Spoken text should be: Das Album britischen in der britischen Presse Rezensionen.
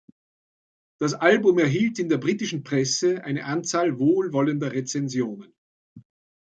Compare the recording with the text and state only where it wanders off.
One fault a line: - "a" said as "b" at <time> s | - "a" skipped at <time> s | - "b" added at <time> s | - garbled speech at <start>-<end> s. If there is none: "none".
- "britischen" said as "erhielt" at 1.6 s
- "eine Anzahl wohlwollender" added at 3.2 s